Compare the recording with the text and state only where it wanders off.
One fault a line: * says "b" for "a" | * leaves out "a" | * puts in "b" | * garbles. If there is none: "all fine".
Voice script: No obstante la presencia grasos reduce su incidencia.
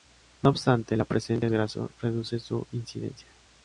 all fine